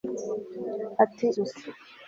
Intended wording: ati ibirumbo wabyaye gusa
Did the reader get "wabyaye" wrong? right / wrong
wrong